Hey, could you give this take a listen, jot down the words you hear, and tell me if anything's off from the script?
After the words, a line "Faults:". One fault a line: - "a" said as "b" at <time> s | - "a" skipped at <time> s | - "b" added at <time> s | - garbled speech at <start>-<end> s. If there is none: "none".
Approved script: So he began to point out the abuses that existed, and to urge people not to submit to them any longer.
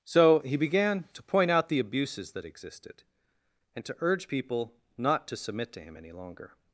So he began to point out the abuses that existed, and to urge people not to submit to him any longer.
Faults:
- "them" said as "him" at 5.8 s